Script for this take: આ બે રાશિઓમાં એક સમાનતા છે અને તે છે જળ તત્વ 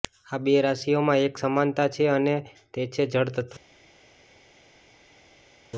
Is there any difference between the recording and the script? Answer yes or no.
no